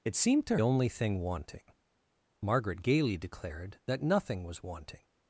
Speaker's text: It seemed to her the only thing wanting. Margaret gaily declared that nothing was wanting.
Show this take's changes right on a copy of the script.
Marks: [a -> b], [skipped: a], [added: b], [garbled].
It seemed to [skipped: her the] only thing wanting. Margaret gaily declared that nothing was wanting.